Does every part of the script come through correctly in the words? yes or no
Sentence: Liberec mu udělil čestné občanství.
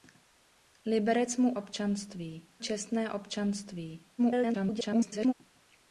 no